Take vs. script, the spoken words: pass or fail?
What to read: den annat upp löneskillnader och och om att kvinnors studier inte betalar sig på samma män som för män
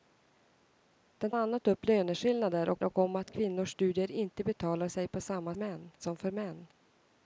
pass